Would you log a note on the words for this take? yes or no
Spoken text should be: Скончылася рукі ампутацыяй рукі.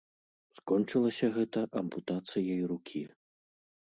yes